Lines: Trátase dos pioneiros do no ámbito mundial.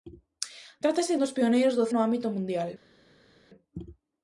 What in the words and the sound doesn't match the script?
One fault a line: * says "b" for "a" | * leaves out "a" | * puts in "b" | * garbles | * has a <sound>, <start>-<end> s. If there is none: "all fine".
all fine